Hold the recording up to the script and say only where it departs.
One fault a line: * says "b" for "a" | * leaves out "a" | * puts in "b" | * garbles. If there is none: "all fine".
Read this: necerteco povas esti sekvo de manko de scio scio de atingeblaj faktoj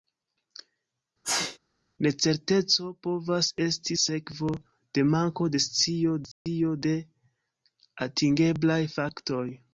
all fine